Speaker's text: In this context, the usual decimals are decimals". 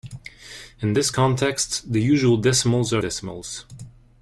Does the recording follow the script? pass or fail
pass